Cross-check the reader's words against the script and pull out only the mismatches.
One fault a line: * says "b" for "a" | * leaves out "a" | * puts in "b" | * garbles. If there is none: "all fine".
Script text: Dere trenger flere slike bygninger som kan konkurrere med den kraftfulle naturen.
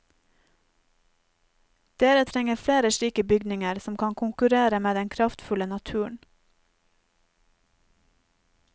all fine